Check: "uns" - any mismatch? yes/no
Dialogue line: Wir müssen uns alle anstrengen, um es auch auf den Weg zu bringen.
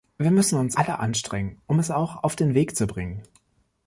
no